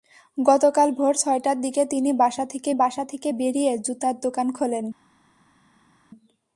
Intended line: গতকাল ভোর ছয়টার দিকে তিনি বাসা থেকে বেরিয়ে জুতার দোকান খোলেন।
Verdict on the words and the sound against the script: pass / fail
fail